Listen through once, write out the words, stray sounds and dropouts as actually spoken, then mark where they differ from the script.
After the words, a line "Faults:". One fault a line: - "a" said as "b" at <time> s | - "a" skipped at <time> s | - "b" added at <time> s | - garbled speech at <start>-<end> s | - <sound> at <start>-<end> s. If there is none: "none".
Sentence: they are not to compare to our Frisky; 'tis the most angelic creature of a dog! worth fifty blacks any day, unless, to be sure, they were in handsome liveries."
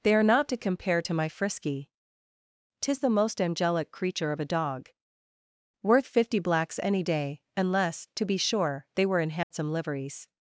they are not to compare to my Frisky; 'tis the most angelic creature of a dog! worth fifty blacks any day, unless, to be sure, they were in handsome liveries."
Faults:
- "our" said as "my" at 1.1 s
- dropout at 9.4-9.5 s